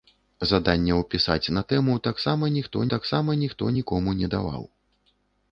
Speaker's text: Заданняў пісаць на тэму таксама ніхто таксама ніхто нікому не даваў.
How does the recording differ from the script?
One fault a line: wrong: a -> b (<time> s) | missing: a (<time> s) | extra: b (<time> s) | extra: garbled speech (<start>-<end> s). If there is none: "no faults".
no faults